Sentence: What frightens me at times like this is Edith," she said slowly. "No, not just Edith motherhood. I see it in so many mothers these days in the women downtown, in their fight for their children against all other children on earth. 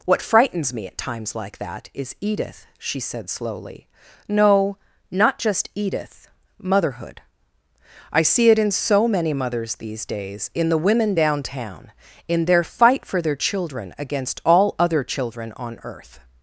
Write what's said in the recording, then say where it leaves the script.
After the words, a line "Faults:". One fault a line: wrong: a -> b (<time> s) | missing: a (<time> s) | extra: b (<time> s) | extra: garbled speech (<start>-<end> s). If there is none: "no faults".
What frightens me at times like that is Edith," she said slowly. "No, not just Edith motherhood. I see it in so many mothers these days in the women downtown, in their fight for their children against all other children on earth.
Faults:
wrong: this -> that (1.6 s)